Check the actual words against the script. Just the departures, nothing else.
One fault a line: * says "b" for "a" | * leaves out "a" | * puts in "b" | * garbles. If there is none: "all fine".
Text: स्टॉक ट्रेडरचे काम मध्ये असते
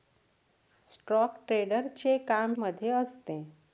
all fine